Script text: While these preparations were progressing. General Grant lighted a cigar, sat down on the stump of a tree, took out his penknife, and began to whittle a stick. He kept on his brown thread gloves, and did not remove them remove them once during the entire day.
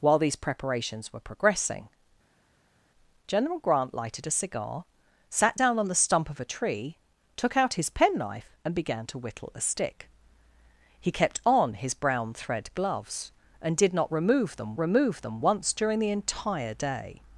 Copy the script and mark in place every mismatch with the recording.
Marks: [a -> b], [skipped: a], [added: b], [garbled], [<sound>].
While these preparations were progressing. General Grant lighted a cigar, sat down on the stump of a tree, took out his penknife, and began to whittle a stick. He kept on his brown thread gloves, and did not remove them remove them once during the entire day.